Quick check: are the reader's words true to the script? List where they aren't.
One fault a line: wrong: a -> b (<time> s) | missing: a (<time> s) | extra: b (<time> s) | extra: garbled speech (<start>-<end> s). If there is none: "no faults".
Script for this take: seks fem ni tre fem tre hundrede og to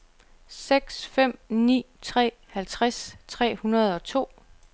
wrong: fem -> halvtreds (2.5 s)